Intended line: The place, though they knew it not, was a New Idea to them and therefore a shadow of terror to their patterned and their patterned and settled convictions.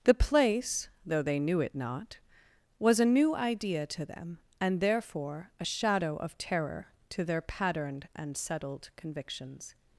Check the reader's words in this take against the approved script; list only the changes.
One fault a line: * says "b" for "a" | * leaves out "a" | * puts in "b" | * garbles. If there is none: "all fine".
* leaves out "their patterned and"